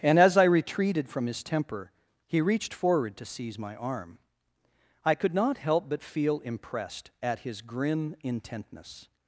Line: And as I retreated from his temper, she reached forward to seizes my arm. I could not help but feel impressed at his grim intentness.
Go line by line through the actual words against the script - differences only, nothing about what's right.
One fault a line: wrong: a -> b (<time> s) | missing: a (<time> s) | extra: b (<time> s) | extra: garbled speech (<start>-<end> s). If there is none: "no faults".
wrong: she -> he (2.2 s)
wrong: seizes -> seize (3.2 s)